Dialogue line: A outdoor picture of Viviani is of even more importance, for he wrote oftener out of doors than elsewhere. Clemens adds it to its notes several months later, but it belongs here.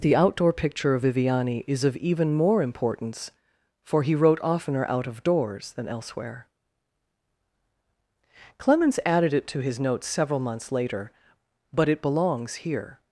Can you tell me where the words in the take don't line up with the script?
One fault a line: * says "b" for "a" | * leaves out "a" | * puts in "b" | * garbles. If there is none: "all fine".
* says "The" for "A"
* says "added" for "adds"
* says "his" for "its"